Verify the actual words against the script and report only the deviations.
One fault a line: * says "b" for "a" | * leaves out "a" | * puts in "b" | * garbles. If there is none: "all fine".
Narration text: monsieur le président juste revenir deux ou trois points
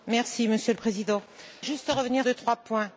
all fine